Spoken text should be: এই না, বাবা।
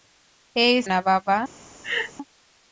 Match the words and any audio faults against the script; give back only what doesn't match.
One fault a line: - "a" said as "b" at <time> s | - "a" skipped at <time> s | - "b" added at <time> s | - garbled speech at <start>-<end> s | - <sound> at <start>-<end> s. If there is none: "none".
- laugh at 1.8-2.1 s